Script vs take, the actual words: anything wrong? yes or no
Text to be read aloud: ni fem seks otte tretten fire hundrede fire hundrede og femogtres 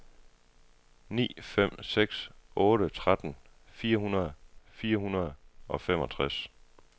no